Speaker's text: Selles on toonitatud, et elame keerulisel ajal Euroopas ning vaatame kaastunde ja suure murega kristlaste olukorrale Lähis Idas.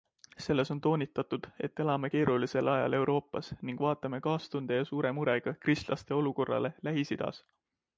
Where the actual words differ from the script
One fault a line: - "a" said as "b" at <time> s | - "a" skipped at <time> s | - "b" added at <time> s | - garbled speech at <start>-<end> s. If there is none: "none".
none